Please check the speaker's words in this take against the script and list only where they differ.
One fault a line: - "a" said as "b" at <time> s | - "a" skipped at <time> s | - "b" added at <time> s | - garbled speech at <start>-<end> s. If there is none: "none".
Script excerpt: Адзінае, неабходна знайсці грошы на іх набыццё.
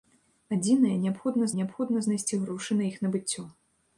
- "неабходна" added at 1.6 s